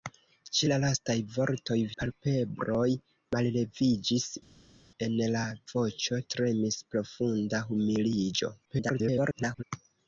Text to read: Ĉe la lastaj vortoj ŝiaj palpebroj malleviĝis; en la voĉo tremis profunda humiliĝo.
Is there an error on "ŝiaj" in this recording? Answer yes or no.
yes